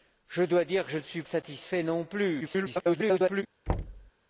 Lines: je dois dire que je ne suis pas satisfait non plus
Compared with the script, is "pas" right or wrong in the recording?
wrong